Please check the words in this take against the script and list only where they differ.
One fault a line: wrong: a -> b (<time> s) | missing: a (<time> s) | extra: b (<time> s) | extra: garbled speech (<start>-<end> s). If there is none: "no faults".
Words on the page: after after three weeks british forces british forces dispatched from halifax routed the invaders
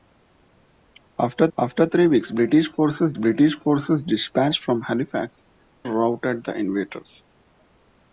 no faults